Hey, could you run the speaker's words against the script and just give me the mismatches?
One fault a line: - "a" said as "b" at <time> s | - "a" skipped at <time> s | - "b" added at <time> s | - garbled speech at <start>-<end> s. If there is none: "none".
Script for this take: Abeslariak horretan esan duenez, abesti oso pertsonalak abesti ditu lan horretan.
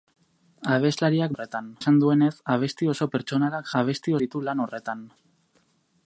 none